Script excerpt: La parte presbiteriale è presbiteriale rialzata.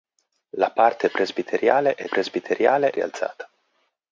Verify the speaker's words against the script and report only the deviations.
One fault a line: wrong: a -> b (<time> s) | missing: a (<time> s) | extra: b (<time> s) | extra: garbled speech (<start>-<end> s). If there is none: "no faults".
no faults